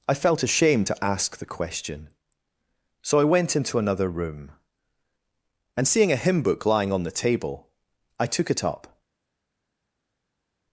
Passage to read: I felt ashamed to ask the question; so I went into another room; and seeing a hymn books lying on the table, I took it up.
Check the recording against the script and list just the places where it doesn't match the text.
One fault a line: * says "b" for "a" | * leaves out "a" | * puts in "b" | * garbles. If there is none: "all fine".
* says "book" for "books"